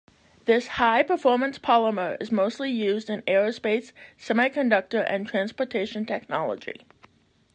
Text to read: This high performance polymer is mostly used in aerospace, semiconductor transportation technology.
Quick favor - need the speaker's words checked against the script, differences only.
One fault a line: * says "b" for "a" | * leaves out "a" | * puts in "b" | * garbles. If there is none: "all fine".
* puts in "and"